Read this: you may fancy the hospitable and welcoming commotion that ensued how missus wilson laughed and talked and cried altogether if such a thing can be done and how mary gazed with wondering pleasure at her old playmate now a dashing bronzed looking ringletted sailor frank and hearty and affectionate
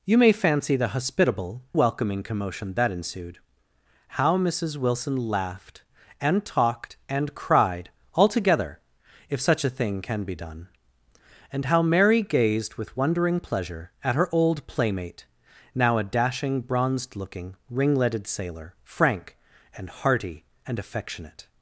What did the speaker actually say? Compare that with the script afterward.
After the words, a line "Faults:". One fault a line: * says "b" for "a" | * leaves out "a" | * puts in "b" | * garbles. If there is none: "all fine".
you may fancy the hospitable welcoming commotion that ensued how missus wilson laughed and talked and cried altogether if such a thing can be done and how mary gazed with wondering pleasure at her old playmate now a dashing bronzed looking ringletted sailor frank and hearty and affectionate
Faults:
* leaves out "and"